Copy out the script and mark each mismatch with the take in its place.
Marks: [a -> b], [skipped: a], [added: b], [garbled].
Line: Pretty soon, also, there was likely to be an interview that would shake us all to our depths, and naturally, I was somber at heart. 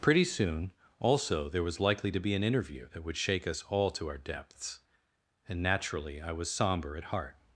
Pretty soon, also, there was likely to be an interview that would shake us all to our depths, and naturally, I was somber at heart.